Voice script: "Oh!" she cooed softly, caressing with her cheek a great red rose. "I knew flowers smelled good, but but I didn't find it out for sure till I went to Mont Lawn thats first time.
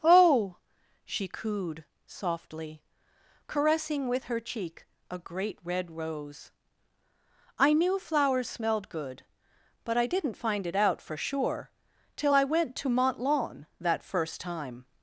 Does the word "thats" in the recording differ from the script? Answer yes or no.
yes